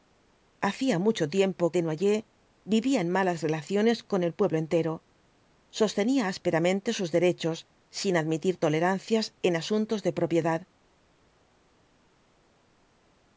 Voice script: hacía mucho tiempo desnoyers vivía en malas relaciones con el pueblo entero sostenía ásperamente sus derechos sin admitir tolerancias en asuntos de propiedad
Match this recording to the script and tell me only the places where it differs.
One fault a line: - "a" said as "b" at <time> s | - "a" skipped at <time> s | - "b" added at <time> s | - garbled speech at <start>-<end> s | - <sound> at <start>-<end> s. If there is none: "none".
none